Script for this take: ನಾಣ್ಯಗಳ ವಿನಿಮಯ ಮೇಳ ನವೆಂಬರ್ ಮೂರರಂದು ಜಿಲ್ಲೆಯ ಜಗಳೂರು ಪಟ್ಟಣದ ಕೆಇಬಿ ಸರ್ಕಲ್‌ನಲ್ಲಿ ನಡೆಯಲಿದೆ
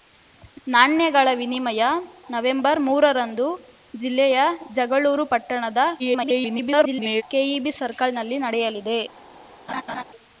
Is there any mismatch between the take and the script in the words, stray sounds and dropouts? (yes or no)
yes